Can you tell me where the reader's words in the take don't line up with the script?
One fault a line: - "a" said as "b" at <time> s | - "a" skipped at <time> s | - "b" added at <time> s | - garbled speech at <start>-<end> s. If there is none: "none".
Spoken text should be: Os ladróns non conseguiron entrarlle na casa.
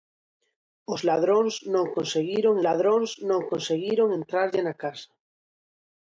- "ladróns non conseguiron" added at 2.7 s